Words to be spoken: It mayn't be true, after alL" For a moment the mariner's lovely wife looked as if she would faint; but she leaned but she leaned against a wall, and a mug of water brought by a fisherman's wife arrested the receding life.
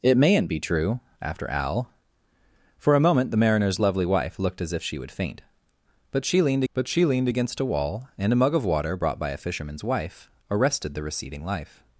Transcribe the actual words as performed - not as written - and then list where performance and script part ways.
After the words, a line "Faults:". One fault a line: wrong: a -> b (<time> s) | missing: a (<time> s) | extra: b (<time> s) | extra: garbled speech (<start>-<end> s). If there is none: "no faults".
It mayn't be true, after alL" For a moment the mariner's lovely wife looked as if she would faint; but she leaned but she leaned against a wall, and a mug of water brought by a fisherman's wife arrested the receding life.
Faults:
no faults